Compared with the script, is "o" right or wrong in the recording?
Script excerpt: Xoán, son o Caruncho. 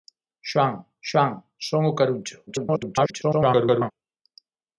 right